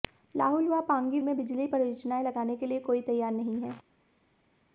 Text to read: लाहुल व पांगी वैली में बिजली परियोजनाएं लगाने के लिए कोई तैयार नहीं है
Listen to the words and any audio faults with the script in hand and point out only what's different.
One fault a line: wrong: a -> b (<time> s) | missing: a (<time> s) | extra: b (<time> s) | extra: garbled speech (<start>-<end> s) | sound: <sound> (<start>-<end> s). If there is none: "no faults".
missing: वैली (1.2 s)